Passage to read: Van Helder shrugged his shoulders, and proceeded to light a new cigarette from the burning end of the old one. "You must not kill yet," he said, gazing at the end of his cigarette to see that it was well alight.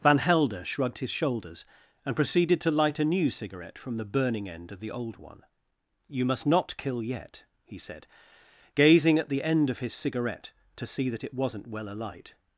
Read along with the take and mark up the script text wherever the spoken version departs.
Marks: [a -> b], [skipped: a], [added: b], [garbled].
Van Helder shrugged his shoulders, and proceeded to light a new cigarette from the burning end of the old one. "You must not kill yet," he said, gazing at the end of his cigarette to see that it [was -> wasn't] well alight.